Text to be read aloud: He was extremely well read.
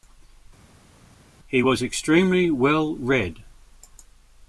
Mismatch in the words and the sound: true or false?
false